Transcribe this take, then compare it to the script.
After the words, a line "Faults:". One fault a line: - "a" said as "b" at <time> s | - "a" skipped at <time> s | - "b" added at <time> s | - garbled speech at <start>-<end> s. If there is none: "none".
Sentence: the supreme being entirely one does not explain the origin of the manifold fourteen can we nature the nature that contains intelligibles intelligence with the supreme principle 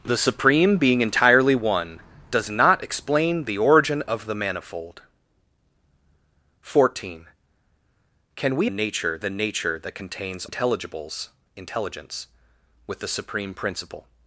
the supreme being entirely one does not explain the origin of the manifold fourteen can we nature the nature that contains intelligibles intelligence with the supreme principle
Faults:
none